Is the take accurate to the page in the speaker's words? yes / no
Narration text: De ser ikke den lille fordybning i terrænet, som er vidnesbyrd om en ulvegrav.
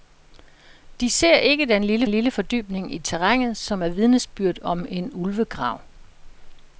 no